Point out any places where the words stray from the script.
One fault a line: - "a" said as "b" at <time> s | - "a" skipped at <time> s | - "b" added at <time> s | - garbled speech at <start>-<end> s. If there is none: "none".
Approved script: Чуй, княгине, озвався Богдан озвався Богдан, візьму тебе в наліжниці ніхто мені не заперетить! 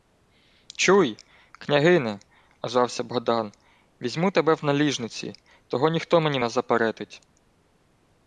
- "озвався Богдан" skipped at 3.5 s
- "того" added at 5.7 s